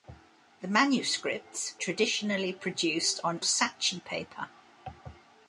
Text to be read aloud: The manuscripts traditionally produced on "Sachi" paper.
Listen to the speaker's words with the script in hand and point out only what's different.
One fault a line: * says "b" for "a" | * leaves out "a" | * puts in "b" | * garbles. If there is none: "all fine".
all fine